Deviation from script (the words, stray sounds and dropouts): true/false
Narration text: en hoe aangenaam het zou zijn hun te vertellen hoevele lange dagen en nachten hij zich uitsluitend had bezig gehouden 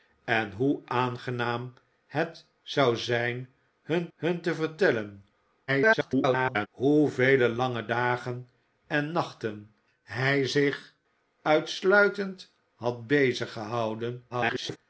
true